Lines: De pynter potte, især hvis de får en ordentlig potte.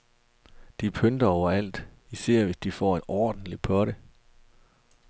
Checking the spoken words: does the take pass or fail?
fail